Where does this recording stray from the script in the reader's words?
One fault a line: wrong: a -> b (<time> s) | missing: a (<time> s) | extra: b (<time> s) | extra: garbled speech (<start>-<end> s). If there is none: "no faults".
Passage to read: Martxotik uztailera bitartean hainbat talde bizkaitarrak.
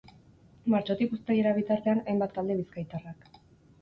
no faults